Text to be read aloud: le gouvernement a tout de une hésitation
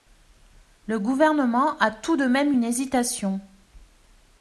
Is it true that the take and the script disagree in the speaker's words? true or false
true